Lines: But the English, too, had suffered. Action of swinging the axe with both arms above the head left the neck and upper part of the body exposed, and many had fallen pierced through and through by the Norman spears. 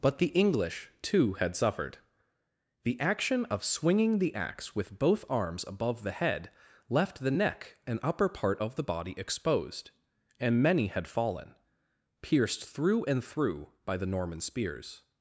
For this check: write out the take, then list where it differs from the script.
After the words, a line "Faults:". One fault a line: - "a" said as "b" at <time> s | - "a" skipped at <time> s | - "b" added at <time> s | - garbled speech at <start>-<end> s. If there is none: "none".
But the English, too, had suffered. The action of swinging the axe with both arms above the head left the neck and upper part of the body exposed, and many had fallen pierced through and through by the Norman spears.
Faults:
- "The" added at 2.8 s